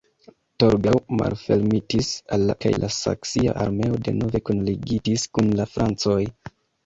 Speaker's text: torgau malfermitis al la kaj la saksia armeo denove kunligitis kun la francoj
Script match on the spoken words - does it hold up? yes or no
yes